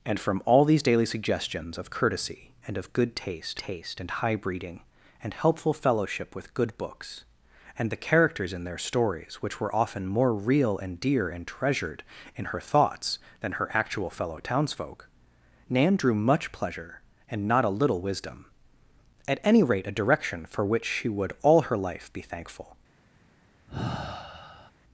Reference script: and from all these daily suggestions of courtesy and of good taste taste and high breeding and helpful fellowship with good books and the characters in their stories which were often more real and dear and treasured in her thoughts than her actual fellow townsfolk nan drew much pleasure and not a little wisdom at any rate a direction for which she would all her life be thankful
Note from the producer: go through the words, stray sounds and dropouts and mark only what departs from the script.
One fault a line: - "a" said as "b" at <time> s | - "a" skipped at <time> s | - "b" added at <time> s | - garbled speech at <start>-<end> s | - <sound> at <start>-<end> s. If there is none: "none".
- sigh at 23.7-24.7 s